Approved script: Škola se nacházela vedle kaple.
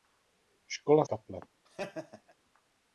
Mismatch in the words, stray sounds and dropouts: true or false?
true